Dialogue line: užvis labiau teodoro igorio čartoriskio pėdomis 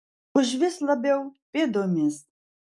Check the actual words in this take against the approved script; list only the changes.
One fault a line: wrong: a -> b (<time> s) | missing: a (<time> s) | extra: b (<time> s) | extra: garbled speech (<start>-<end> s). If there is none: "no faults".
missing: teodoro igorio čartoriskio (1.2 s)